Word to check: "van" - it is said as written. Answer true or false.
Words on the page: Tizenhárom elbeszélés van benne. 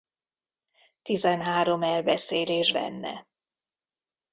false